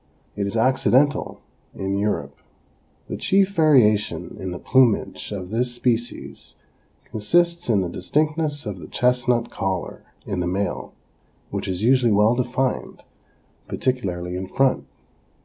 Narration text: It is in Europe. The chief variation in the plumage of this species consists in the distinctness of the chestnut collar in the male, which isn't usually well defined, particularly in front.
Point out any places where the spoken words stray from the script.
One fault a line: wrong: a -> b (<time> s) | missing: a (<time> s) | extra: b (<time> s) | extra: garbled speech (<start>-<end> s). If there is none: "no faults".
extra: accidental (0.5 s)
wrong: isn't -> is (11.7 s)